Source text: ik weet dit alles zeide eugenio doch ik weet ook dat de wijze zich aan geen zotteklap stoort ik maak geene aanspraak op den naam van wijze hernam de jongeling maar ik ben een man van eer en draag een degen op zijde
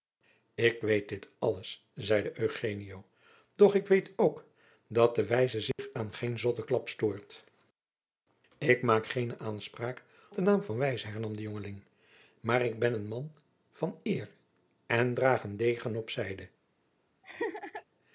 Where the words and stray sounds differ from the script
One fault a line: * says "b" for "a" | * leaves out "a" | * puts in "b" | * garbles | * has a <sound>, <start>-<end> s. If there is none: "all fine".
* has a dropout, 5.7-5.8 s
* leaves out "op"
* has a laugh, 17.2-17.8 s